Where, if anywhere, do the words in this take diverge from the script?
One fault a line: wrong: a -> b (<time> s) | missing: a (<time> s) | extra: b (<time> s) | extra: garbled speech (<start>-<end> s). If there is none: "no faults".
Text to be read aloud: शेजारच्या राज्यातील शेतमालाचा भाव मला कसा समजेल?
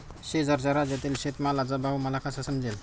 no faults